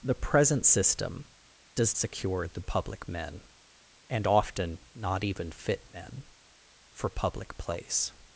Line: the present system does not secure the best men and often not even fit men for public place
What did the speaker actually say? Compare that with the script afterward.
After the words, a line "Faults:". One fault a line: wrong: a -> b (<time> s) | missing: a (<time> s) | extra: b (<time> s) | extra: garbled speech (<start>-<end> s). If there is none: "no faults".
the present system does secure the public men and often not even fit men for public place
Faults:
missing: not (1.9 s)
wrong: best -> public (2.6 s)